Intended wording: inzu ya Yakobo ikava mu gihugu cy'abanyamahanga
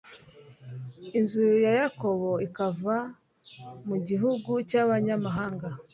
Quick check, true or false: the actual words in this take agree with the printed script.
true